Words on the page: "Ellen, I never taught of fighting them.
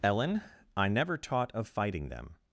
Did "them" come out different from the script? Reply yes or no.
no